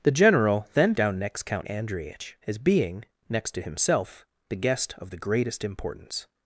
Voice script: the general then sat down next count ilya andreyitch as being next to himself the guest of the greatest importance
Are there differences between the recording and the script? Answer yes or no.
yes